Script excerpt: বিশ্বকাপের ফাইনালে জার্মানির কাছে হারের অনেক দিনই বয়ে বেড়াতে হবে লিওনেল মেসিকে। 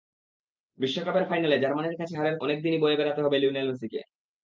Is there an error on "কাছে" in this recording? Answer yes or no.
no